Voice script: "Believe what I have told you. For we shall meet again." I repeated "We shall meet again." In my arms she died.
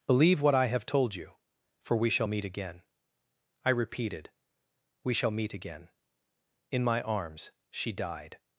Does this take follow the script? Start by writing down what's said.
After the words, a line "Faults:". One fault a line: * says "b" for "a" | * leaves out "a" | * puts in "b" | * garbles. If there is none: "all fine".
"Believe what I have told you. For we shall meet again." I repeated "We shall meet again." In my arms she died.
Faults:
all fine